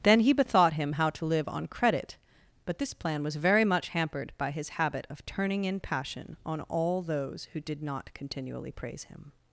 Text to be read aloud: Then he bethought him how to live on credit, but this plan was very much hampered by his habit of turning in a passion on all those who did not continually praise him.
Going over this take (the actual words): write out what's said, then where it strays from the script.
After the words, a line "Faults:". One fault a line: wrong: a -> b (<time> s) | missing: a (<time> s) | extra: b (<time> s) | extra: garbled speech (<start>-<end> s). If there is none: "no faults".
Then he bethought him how to live on credit, but this plan was very much hampered by his habit of turning in passion on all those who did not continually praise him.
Faults:
missing: a (5.8 s)